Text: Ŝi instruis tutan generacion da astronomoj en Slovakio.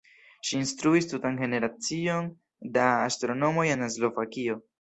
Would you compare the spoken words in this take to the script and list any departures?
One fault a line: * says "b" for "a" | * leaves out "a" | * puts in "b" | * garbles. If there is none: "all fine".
all fine